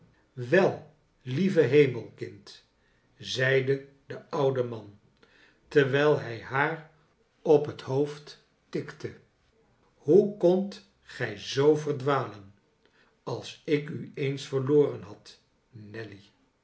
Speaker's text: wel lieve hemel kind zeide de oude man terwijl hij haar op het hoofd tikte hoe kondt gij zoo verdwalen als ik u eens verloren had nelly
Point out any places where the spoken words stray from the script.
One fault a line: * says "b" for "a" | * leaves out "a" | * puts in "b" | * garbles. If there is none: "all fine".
all fine